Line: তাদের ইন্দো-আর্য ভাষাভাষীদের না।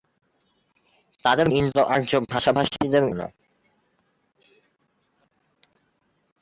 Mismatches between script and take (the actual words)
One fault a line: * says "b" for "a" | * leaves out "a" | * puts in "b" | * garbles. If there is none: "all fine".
all fine